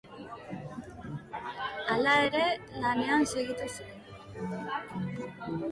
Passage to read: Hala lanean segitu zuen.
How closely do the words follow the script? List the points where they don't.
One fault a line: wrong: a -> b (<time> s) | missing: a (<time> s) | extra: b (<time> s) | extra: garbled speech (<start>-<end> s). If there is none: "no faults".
extra: ere (2.3 s)